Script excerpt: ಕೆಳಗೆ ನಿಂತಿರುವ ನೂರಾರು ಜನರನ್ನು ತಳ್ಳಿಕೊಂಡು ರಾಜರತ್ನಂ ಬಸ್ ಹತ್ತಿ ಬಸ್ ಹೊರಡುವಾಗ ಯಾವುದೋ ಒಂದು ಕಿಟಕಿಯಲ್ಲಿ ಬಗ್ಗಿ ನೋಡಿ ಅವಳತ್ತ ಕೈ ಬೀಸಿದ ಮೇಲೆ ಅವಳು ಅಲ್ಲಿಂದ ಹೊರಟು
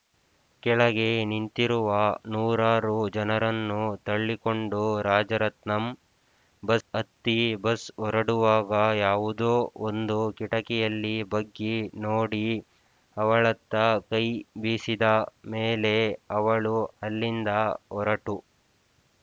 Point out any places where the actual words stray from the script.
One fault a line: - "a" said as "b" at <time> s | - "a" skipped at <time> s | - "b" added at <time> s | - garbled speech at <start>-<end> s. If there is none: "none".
none